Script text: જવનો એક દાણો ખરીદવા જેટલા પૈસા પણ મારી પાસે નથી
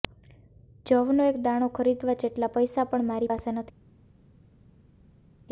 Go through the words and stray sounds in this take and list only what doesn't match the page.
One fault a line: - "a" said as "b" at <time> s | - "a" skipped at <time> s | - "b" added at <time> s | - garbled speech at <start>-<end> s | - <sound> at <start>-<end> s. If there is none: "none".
none